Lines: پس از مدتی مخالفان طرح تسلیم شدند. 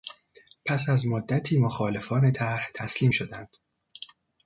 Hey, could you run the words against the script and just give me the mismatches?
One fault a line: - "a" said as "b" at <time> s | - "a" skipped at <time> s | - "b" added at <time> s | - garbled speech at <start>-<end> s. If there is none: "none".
none